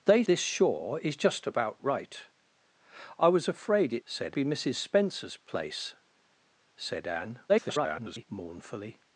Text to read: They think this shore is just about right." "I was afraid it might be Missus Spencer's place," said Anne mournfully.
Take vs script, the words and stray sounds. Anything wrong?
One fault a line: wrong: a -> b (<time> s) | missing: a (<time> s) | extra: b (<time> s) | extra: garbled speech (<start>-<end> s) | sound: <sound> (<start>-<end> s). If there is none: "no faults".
missing: think (0.2 s)
wrong: might -> said (4.0 s)
extra: garbled speech (7.5-8.3 s)